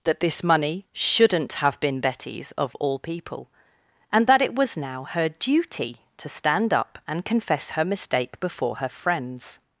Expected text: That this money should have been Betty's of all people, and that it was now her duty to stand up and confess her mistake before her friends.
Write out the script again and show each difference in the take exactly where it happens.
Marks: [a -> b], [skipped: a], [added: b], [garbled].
That this money [should -> shouldn't] have been Betty's of all people, and that it was now her duty to stand up and confess her mistake before her friends.